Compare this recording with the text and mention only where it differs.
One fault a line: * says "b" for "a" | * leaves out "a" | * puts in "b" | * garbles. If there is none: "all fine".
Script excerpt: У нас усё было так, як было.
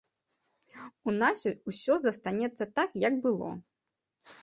* says "застанецца" for "было"